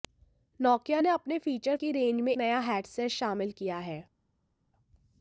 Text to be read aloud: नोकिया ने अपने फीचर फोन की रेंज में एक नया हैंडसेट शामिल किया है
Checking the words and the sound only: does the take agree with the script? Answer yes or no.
no